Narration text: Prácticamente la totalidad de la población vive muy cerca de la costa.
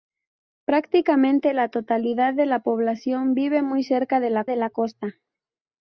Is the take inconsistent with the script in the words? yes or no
yes